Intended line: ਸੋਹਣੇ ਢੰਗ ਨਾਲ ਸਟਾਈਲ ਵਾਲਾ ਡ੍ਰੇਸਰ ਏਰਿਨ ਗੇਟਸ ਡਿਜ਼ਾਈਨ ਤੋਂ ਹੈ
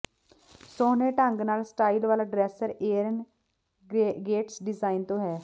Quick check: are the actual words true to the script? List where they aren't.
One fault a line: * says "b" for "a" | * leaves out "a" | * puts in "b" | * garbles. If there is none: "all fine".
all fine